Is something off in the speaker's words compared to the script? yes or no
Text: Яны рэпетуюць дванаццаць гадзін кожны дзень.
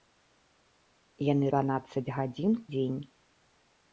yes